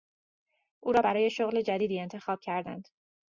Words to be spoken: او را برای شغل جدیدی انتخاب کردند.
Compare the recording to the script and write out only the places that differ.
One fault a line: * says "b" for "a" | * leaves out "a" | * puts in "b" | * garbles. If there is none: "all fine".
all fine